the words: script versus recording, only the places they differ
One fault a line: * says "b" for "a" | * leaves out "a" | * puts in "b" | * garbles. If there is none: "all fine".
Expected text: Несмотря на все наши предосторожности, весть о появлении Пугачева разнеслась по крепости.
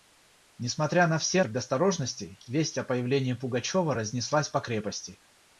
* leaves out "наши"